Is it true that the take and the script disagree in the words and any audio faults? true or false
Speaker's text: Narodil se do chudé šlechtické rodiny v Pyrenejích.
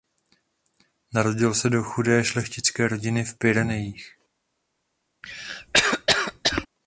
true